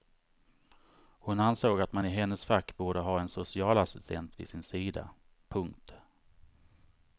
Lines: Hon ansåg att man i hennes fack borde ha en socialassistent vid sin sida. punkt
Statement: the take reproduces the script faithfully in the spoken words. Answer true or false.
true